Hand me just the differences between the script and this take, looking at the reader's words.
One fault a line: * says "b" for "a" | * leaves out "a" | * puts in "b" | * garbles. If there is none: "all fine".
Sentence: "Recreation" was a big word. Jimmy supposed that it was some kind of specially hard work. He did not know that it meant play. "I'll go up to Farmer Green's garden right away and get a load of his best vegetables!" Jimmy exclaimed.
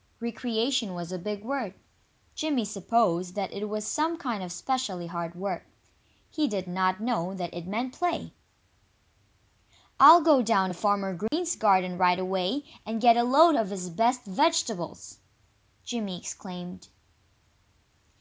* says "down" for "up"